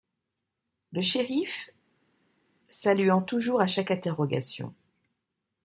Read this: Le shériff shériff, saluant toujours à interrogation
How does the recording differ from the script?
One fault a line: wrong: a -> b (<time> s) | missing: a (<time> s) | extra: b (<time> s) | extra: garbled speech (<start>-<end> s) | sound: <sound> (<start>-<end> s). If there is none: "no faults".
missing: shériff (1.7 s)
extra: chaque (3.7 s)